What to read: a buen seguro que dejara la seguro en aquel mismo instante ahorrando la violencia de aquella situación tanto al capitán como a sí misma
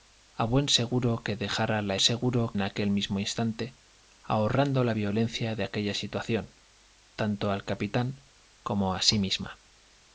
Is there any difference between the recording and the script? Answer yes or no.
no